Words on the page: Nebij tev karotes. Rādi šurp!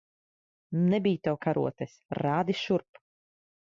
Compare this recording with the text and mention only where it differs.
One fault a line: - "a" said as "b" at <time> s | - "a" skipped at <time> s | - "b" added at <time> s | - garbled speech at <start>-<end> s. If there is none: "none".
none